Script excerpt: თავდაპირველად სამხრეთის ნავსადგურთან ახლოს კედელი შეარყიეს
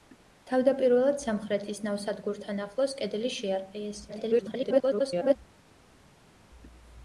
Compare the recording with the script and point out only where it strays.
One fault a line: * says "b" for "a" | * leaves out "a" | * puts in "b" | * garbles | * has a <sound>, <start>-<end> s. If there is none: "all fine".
* garbles